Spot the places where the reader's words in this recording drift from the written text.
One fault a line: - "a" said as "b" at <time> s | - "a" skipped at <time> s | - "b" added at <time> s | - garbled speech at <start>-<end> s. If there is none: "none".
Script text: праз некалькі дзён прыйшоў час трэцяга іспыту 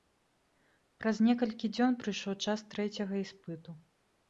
none